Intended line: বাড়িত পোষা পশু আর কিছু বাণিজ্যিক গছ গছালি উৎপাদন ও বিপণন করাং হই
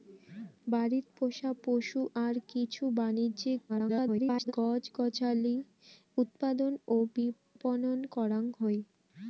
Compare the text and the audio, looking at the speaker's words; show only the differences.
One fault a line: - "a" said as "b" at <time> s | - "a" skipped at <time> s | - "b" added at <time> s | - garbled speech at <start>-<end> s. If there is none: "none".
- garbled speech at 3.7-4.5 s